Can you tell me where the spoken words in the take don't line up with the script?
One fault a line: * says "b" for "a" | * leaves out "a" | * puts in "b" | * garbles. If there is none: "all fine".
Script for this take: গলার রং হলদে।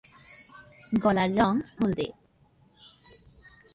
all fine